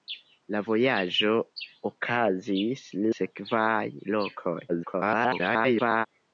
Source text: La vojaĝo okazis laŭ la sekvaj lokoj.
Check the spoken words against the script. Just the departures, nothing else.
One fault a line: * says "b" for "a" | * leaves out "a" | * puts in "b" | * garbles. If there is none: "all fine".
* leaves out "laŭ la"
* garbles